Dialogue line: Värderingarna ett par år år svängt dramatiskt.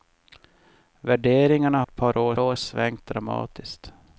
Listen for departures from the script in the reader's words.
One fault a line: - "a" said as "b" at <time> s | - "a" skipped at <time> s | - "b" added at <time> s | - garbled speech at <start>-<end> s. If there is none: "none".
none